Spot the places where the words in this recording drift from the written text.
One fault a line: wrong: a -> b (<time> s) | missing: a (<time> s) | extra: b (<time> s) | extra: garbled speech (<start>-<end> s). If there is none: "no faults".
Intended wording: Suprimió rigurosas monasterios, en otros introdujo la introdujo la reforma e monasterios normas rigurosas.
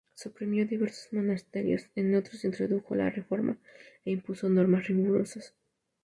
wrong: rigurosas -> diversos (0.7 s)
missing: introdujo la (3.1 s)
wrong: monasterios -> impuso (4.1 s)